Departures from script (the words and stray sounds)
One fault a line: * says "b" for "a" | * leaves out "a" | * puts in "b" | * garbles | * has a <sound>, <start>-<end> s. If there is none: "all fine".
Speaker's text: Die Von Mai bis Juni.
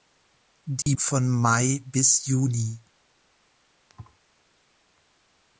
* has a dropout, 0.8-0.9 s
* has a thud, 3.9-4.2 s